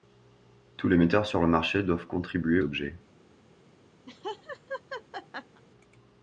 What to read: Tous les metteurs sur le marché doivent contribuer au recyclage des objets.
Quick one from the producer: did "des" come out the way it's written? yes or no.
no